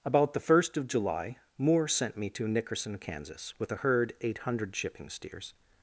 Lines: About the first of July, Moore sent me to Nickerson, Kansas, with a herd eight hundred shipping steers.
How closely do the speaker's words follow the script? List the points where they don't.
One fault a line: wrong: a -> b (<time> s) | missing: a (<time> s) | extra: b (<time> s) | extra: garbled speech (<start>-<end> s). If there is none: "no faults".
no faults